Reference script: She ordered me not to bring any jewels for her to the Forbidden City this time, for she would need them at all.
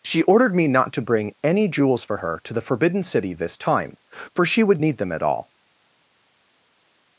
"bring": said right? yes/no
yes